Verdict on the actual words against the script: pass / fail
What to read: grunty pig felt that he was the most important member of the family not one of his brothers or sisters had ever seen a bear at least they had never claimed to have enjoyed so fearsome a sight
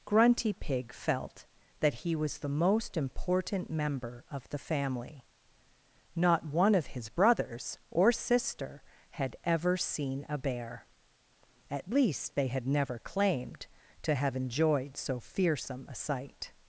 fail